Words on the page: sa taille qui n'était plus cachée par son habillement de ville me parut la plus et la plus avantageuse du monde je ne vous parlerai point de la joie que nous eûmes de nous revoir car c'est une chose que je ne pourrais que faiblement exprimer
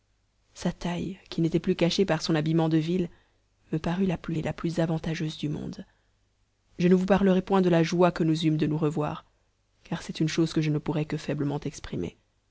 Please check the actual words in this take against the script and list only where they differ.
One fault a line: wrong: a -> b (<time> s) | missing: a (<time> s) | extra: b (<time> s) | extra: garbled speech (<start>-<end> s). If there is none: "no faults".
no faults